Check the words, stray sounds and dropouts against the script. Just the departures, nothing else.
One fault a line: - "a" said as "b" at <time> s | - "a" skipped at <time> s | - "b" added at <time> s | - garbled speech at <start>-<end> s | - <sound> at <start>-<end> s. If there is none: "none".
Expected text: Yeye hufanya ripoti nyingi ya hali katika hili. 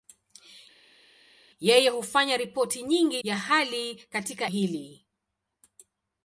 none